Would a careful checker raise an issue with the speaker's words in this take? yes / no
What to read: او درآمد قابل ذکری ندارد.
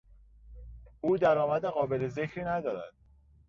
no